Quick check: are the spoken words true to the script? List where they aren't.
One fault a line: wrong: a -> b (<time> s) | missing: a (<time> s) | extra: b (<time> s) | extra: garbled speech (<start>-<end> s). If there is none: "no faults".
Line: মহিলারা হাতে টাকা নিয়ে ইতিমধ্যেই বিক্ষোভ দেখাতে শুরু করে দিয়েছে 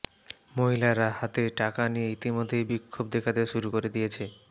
no faults